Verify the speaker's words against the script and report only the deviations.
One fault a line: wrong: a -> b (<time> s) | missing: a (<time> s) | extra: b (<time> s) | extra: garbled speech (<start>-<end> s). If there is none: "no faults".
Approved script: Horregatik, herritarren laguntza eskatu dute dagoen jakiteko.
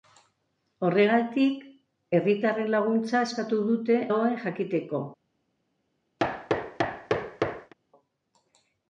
no faults